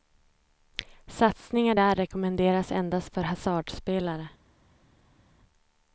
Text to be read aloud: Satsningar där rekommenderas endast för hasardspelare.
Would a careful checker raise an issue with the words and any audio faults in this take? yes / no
no